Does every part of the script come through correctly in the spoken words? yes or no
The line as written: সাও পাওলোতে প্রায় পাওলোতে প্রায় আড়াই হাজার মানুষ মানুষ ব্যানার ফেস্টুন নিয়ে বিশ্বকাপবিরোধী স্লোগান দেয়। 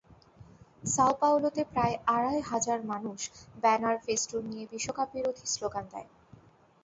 no